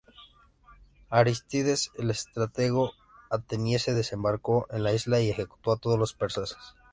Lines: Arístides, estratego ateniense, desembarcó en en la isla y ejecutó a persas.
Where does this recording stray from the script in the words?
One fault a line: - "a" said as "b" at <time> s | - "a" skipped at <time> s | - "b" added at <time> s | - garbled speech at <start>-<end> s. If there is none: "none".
- "el" added at 1.9 s
- "en" skipped at 4.8 s
- "todos los" added at 5.8 s